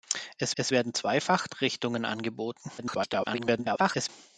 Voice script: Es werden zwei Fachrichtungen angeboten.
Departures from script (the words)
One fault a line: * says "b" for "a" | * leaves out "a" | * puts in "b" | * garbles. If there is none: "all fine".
* puts in "es"
* garbles